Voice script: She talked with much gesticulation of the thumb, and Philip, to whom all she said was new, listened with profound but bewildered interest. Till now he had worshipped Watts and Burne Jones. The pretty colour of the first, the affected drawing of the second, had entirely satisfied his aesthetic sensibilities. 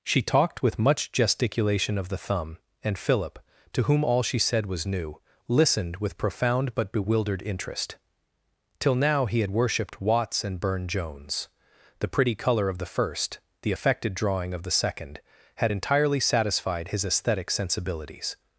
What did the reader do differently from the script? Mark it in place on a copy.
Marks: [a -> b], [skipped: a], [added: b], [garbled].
She talked with much gesticulation of the thumb, and Philip, to whom all she said was new, listened with profound but bewildered interest. Till now he had worshipped Watts and Burne Jones. The pretty colour of the first, the affected drawing of the second, had entirely satisfied his aesthetic sensibilities.